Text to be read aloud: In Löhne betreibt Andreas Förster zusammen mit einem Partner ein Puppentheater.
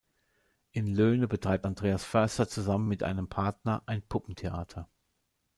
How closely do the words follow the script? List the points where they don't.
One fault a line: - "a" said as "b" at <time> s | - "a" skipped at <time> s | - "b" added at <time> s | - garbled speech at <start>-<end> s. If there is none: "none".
none